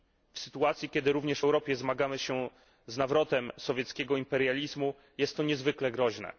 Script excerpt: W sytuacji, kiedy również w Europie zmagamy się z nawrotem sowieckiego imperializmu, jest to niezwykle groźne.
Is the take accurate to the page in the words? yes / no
yes